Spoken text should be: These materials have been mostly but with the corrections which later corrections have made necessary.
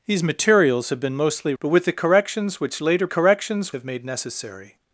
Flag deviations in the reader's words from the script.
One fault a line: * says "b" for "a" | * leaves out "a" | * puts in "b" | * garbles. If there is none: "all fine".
all fine